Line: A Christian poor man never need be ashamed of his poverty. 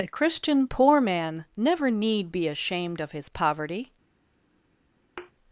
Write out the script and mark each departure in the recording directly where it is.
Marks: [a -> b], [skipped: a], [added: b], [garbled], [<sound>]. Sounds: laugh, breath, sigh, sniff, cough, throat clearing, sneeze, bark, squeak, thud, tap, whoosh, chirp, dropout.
A Christian poor man never need be ashamed of his poverty. [thud]